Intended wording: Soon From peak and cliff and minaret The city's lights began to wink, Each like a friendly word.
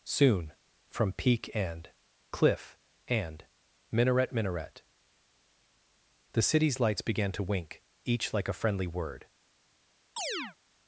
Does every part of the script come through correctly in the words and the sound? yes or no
no